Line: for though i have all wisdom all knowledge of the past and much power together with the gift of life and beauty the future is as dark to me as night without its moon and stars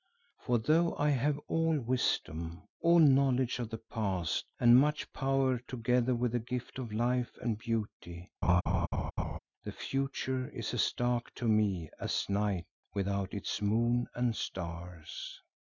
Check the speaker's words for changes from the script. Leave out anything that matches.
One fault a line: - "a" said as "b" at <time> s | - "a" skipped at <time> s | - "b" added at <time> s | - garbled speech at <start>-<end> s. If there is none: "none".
none